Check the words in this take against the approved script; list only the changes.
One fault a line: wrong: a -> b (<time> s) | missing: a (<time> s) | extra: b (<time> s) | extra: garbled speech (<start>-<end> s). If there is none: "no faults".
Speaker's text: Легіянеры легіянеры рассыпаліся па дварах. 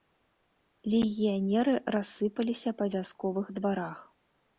missing: легіянеры (1.8 s)
extra: вясковых (3.0 s)